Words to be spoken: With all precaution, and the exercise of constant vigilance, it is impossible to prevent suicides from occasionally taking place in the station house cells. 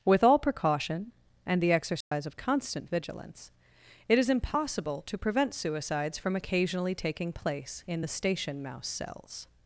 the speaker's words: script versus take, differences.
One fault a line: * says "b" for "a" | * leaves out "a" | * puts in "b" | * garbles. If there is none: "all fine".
* says "mouse" for "house"